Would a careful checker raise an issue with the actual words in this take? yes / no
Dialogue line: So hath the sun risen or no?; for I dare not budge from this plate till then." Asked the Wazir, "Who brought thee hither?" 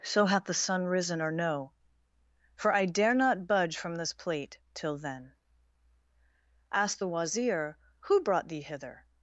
no